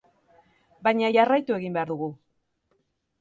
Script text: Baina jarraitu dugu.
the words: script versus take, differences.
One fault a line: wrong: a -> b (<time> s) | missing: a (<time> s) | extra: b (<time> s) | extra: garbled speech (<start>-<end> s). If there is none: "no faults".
extra: egin behar (1.6 s)